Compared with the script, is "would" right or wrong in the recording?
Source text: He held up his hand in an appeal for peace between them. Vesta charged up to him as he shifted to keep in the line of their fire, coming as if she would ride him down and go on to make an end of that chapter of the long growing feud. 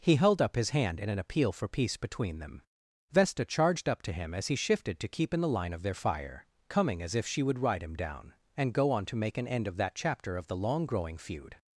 right